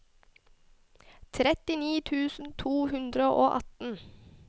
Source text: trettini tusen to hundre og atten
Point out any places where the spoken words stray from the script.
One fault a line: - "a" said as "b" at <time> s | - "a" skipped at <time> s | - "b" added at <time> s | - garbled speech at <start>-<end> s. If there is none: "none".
none